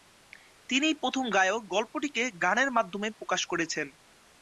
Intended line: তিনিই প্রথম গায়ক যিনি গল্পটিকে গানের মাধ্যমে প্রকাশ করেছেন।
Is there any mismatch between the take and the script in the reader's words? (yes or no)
yes